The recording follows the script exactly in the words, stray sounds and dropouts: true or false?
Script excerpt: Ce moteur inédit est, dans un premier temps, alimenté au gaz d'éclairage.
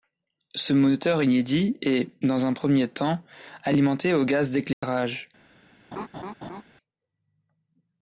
false